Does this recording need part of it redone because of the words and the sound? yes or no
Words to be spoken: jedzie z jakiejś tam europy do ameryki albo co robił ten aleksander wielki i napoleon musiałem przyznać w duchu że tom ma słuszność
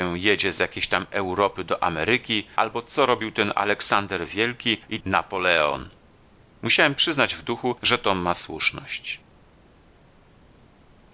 no